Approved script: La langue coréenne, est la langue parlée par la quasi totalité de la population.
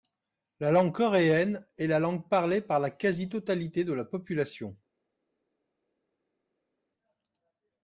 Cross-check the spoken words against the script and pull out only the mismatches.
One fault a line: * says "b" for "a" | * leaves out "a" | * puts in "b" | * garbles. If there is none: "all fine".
all fine